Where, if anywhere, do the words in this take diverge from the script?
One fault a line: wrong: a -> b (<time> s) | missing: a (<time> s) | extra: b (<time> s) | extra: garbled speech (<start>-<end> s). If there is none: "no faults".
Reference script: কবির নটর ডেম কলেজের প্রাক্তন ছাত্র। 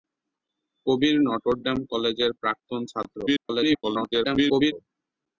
extra: garbled speech (3.3-4.7 s)